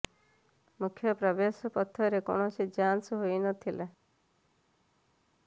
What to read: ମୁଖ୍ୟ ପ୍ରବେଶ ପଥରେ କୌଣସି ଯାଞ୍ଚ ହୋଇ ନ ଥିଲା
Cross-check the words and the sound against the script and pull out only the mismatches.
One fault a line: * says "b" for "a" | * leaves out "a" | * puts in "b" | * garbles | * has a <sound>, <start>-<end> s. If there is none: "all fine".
all fine